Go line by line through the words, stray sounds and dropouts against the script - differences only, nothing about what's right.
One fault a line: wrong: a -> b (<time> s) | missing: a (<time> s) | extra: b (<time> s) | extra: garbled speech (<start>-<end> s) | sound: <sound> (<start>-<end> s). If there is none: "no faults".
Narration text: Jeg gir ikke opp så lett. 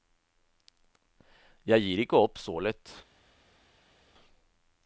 no faults